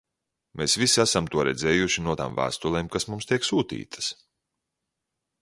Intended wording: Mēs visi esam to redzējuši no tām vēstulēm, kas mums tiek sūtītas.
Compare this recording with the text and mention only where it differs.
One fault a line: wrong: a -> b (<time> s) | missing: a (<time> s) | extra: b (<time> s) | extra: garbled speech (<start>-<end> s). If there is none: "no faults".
no faults